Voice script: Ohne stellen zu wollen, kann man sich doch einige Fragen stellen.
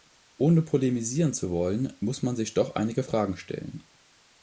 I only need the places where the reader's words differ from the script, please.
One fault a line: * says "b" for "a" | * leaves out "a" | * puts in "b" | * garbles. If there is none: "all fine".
* says "polemisieren" for "stellen"
* says "muss" for "kann"